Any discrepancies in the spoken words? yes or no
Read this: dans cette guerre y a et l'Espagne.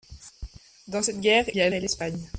no